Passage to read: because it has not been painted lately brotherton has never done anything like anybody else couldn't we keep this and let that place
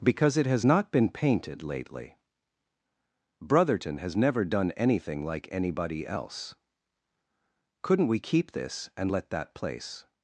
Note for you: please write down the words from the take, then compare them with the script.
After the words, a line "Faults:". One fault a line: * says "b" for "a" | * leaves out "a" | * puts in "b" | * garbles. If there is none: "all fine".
because it has not been painted lately brotherton has never done anything like anybody else couldn't we keep this and let that place
Faults:
all fine